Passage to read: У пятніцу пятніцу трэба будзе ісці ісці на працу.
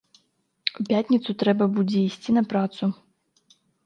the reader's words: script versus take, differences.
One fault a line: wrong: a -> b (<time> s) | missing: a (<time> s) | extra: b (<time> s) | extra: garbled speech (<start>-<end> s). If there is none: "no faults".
missing: пятніцу (1.4 s)
missing: ісці (2.3 s)